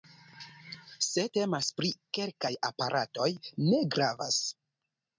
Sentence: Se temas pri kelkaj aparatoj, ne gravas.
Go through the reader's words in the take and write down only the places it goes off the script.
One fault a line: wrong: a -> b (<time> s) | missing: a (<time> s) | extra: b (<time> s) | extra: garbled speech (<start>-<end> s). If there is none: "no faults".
no faults